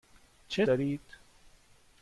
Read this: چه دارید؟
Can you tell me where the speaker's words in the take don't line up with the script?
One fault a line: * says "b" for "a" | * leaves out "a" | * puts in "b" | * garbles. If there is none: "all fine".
all fine